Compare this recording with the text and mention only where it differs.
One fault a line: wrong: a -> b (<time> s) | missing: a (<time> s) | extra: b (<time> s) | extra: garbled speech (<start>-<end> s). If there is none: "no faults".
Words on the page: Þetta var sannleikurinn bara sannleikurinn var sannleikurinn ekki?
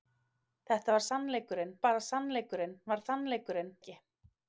no faults